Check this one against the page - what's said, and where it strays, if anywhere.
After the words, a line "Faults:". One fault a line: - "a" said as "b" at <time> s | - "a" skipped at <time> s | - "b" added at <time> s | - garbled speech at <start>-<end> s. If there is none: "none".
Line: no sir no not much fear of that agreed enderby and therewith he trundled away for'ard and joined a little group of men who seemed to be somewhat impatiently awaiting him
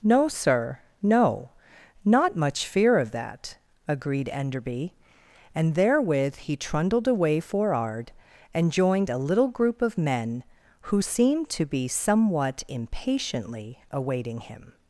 no sir no not much fear of that agreed enderby and therewith he trundled away for'ard and joined a little group of men who seemed to be somewhat impatiently awaiting him
Faults:
none